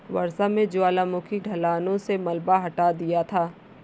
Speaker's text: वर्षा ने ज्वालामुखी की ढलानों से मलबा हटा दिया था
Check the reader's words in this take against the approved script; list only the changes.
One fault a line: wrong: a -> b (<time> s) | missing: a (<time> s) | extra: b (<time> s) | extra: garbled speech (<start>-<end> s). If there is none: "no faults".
missing: की (1.4 s)